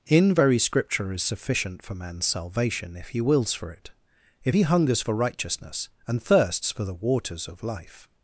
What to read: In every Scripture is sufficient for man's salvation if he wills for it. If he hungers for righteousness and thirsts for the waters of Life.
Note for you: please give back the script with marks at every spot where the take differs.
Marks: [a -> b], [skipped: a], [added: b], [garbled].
In [every -> very] Scripture is sufficient for man's salvation if he wills for it. If he hungers for righteousness and thirsts for the waters of Life.